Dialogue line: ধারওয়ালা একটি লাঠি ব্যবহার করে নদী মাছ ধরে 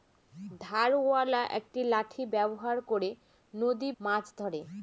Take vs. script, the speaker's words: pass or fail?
pass